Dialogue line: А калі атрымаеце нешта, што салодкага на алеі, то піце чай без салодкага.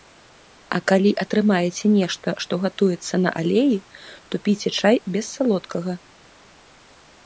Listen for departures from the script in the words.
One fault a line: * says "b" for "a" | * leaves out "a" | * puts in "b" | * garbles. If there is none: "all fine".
* says "гатуецца" for "салодкага"